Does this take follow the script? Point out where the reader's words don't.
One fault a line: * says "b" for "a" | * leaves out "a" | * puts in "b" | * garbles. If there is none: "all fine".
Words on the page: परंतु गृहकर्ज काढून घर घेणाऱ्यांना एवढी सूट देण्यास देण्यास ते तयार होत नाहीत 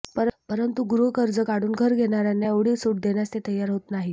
* leaves out "देण्यास"